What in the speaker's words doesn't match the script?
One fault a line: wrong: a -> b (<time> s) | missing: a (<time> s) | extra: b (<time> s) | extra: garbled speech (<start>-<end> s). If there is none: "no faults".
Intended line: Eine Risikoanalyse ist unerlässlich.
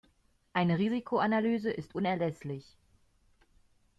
no faults